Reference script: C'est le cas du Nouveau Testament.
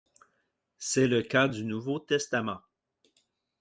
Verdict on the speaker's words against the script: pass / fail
pass